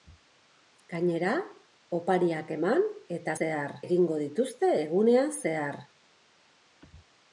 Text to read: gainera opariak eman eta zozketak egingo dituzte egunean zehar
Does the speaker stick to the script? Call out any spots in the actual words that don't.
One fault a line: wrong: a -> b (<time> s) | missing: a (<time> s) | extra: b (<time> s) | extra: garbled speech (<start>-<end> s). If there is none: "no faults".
wrong: zozketak -> zehar (3.4 s)